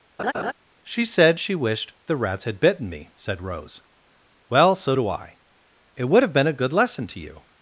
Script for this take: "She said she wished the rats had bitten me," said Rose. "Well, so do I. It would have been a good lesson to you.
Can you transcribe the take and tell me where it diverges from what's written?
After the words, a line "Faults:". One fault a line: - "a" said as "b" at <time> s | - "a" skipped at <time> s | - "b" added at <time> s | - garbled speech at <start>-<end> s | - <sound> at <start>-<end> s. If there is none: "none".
"She said she wished the rats had bitten me," said Rose. "Well, so do I. It would have been a good lesson to you.
Faults:
- laugh at 0.2-0.5 s